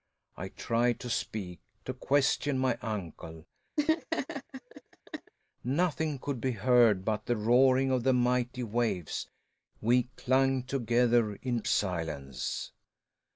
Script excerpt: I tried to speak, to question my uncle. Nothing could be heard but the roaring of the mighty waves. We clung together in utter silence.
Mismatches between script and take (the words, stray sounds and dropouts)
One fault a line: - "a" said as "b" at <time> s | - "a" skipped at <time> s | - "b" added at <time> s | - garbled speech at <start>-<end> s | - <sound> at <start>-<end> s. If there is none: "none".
- laugh at 3.8-5.3 s
- "utter" skipped at 11.6 s